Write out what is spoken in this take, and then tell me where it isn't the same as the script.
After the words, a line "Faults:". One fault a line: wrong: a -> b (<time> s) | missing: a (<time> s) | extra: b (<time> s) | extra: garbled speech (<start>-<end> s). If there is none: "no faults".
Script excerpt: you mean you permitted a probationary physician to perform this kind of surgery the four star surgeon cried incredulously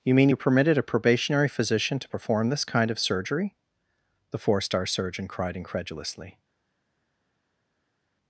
you mean you permitted a probationary physician to perform this kind of surgery the four star surgeon cried incredulously
Faults:
no faults